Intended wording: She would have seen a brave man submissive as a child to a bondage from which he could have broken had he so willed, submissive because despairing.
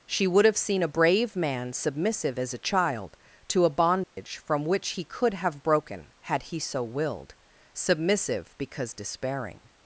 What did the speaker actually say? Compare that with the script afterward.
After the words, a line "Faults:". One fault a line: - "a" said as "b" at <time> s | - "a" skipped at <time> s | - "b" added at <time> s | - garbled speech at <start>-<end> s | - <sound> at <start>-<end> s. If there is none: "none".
She would have seen a brave man submissive as a child to a bondage from which he could have broken had he so willed, submissive because despairing.
Faults:
- dropout at 4.0-4.2 s